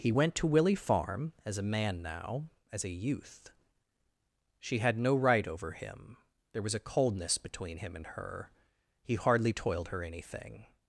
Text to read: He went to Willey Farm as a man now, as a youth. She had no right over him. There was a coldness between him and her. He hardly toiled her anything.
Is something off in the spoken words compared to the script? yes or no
no